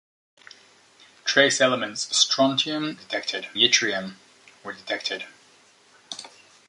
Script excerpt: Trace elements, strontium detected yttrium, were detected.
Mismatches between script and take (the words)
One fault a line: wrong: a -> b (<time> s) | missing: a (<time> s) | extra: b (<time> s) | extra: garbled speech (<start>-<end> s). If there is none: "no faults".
no faults